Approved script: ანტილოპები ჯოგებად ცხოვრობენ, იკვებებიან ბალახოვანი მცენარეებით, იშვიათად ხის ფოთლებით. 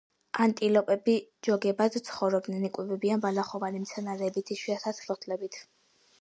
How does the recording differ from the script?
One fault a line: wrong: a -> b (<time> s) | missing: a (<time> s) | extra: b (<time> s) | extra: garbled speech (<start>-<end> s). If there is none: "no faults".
missing: ხის (5.1 s)